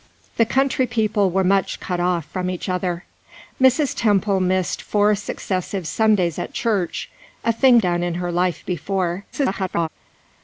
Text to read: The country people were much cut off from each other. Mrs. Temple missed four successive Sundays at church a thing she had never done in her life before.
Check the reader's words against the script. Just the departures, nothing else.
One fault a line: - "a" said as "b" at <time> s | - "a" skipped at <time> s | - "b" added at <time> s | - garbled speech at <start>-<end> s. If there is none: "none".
- "she had never" skipped at 7.8 s
- garbled speech at 9.3-9.9 s